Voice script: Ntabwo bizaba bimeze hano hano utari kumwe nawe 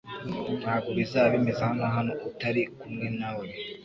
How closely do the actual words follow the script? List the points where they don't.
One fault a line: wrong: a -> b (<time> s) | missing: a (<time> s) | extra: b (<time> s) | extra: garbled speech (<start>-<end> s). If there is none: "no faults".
no faults